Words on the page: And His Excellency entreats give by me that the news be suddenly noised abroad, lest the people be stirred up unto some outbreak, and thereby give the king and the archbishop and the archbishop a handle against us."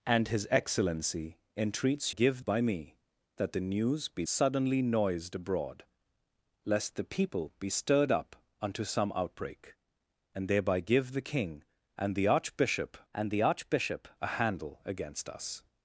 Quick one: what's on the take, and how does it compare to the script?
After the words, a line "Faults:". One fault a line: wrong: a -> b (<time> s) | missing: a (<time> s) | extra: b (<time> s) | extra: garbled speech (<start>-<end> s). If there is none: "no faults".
And His Excellency entreats give by me that the news be suddenly noised abroad, lest the people be stirred up unto some outbreak, and thereby give the king and the archbishop and the archbishop a handle against us."
Faults:
no faults